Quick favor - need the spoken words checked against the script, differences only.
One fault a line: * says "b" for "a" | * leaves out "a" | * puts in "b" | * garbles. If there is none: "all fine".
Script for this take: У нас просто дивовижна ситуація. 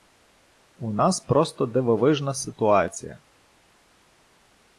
all fine